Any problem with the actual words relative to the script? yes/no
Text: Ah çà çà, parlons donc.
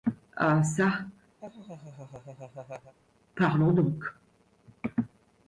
yes